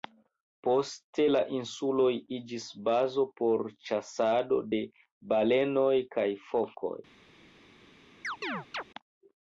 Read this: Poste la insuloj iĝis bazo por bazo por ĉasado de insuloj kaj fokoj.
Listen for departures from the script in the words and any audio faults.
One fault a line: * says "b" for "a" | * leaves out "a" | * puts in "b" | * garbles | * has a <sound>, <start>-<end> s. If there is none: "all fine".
* leaves out "bazo por"
* says "balenoj" for "insuloj"
* has a chirp, 8.2-8.8 s